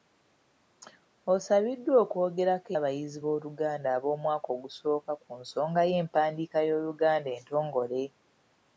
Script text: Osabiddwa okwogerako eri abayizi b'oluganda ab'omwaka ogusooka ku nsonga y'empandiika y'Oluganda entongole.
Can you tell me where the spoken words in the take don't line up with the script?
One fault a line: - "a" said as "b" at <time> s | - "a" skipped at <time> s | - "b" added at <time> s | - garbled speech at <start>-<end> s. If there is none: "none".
- "eri" skipped at 2.7 s